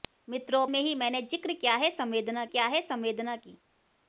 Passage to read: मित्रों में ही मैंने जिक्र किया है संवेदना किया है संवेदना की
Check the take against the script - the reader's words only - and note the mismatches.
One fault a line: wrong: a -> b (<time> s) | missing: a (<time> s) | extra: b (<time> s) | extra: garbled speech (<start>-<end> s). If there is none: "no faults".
no faults